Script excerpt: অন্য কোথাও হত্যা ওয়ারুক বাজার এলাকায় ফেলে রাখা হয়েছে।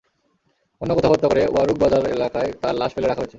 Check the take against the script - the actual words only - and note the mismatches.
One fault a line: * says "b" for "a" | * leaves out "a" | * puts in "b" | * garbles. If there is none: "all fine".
* puts in "করে"
* puts in "তাঁর লাশ"